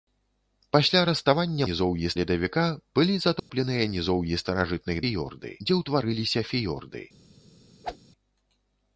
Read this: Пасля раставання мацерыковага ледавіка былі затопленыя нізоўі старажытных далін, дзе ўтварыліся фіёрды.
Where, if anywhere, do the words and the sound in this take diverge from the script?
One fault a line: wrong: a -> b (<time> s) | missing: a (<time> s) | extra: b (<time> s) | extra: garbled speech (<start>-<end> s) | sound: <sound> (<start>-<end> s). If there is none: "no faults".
wrong: мацерыковага -> нізоўі (1.7 s)
sound: dropout (3.4-3.5 s)
wrong: далін -> фіёрды (5.0 s)
sound: whoosh (7.8-8.0 s)